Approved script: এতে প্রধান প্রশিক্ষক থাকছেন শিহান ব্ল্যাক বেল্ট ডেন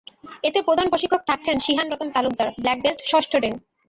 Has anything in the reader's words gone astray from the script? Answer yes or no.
yes